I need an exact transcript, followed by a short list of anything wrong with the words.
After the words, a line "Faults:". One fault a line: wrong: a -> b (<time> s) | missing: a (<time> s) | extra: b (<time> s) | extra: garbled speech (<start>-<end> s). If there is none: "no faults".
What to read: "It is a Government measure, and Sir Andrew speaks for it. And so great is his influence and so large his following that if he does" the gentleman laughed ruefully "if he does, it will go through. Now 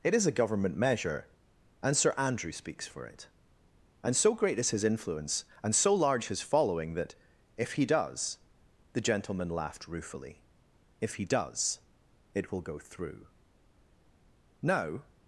"It is a Government measure, and Sir Andrew speaks for it. And so great is his influence and so large his following that if he does" the gentleman laughed ruefully "if he does, it will go through. Now
Faults:
no faults